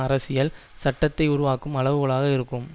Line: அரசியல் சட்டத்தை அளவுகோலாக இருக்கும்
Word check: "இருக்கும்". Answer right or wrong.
right